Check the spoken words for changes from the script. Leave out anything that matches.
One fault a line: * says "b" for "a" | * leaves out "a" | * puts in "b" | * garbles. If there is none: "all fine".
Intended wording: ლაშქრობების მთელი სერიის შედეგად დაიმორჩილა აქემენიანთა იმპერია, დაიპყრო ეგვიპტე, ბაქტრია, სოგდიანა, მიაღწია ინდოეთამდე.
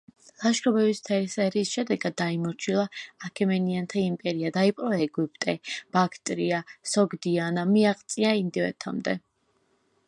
all fine